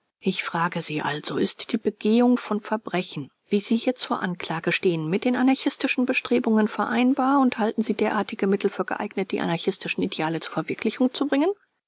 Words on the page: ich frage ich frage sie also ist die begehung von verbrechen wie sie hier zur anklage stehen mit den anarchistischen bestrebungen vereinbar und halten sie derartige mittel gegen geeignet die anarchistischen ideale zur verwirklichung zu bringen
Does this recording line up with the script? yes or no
no